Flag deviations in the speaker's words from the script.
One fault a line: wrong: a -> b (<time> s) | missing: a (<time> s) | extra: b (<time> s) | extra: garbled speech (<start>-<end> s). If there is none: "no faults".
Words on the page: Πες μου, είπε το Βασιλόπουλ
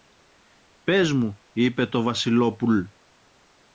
no faults